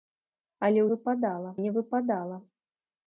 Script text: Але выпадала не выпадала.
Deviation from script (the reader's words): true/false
false